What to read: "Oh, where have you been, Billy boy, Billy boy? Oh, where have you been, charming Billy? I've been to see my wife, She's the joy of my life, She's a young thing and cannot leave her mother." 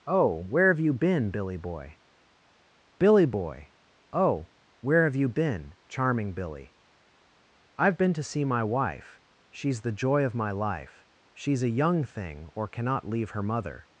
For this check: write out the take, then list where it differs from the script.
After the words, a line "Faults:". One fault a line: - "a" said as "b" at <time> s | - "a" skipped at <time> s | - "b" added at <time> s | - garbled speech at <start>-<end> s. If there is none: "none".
"Oh, where have you been, Billy boy, Billy boy? Oh, where have you been, charming Billy? I've been to see my wife, She's the joy of my life, She's a young thing or cannot leave her mother."
Faults:
- "and" said as "or" at 12.6 s